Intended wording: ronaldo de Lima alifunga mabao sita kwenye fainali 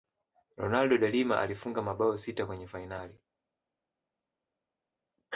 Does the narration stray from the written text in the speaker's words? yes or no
no